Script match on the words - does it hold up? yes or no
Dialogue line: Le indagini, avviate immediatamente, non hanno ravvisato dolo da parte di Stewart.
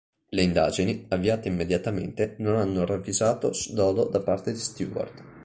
yes